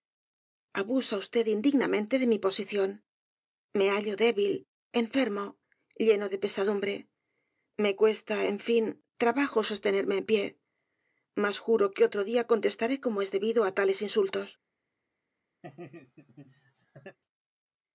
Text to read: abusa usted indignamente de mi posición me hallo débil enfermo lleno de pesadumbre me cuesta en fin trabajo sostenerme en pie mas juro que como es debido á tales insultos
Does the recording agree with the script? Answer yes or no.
no